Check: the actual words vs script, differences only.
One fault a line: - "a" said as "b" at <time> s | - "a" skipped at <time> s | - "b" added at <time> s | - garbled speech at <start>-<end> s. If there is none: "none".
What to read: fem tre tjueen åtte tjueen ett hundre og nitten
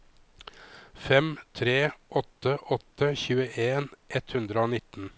- "tjueen" said as "åtte" at 2.2 s